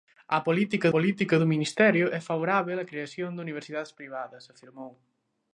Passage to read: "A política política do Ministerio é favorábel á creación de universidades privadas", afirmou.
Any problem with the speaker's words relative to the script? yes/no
no